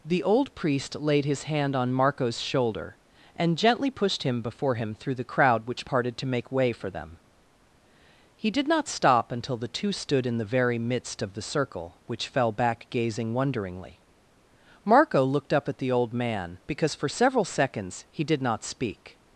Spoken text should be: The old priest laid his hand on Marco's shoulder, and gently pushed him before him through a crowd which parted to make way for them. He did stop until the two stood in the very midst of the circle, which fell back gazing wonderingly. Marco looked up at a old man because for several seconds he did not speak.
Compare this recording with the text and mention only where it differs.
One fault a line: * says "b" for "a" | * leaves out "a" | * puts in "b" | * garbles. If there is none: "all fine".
* says "the" for "a"
* puts in "not"
* says "the" for "a"